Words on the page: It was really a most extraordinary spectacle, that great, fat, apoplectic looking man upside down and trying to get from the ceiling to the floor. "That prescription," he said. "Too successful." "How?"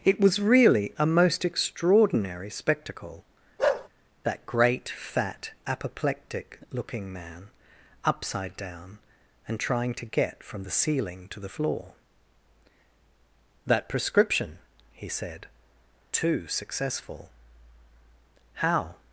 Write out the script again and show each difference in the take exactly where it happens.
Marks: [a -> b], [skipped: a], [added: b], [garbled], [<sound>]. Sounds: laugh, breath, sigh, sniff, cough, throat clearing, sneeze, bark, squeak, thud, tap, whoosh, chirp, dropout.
It was really a most extraordinary spectacle, [bark] that great, fat, apoplectic looking man upside down and trying to get from the ceiling to the floor. "That prescription," he said. "Too successful." "How?"